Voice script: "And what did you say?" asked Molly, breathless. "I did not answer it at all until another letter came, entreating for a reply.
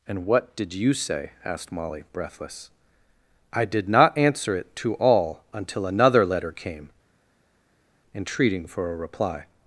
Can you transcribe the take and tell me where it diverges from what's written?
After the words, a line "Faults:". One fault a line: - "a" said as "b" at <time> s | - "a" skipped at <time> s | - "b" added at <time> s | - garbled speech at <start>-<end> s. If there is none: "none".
"And what did you say?" asked Molly, breathless. "I did not answer it to all until another letter came, entreating for a reply.
Faults:
- "at" said as "to" at 4.8 s